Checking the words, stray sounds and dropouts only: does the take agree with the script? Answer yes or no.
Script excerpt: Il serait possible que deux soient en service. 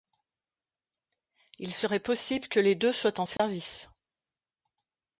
no